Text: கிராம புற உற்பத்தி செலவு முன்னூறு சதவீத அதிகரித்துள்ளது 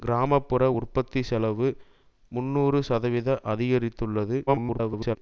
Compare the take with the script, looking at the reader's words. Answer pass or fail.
fail